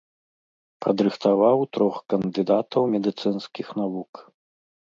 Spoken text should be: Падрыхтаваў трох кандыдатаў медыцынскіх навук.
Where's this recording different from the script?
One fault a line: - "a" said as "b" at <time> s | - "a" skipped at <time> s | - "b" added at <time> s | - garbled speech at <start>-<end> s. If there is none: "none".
none